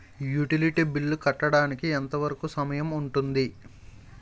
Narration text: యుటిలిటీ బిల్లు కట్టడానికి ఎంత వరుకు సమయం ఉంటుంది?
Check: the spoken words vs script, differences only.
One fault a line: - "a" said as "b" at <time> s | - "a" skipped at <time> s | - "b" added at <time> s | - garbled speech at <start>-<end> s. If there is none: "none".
none